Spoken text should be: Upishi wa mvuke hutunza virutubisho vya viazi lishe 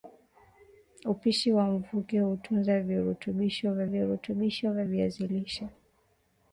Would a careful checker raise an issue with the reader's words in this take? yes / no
yes